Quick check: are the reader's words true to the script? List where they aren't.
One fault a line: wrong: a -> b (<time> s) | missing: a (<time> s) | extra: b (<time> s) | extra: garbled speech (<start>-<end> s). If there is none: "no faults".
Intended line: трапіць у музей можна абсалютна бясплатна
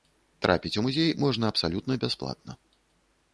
no faults